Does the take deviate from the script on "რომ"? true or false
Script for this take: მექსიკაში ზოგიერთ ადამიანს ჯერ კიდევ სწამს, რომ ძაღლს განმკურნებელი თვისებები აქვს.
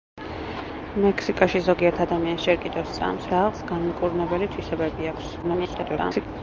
true